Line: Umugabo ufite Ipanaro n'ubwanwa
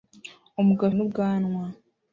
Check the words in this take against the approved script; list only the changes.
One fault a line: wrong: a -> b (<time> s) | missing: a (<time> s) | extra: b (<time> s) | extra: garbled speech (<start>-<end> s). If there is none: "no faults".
missing: ufite Ipanaro (0.9 s)